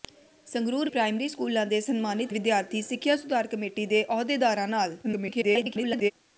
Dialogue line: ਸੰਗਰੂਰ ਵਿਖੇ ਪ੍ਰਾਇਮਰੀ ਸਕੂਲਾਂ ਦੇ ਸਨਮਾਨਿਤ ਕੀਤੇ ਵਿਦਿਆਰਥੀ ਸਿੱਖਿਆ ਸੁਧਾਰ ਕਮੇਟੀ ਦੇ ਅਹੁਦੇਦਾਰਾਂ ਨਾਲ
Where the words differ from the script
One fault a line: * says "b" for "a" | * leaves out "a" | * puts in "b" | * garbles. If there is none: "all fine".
* leaves out "ਵਿਖੇ"
* leaves out "ਕੀਤੇ"
* garbles